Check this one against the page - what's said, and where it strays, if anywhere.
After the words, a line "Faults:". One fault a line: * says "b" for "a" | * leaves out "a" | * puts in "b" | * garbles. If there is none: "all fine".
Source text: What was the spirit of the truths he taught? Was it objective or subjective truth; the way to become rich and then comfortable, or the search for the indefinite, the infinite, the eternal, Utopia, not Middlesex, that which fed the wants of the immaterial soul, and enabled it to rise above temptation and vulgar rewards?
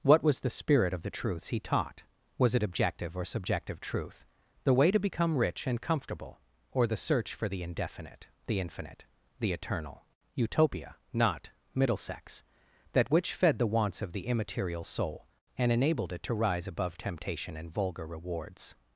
What was the spirit of the truths he taught? Was it objective or subjective truth; the way to become rich and comfortable, or the search for the indefinite, the infinite, the eternal, Utopia, not Middlesex, that which fed the wants of the immaterial soul, and enabled it to rise above temptation and vulgar rewards?
Faults:
* leaves out "then"